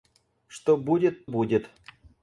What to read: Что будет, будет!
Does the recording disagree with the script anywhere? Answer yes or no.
no